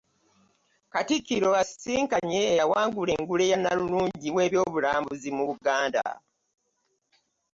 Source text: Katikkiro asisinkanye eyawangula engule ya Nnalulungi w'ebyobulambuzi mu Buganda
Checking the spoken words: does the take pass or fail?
pass